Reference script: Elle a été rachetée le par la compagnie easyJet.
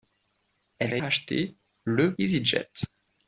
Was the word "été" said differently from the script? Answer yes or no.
yes